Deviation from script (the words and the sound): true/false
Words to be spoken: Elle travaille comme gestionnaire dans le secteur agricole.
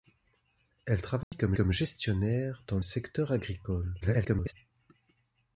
true